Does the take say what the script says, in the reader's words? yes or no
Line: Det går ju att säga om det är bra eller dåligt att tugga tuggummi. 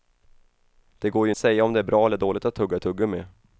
yes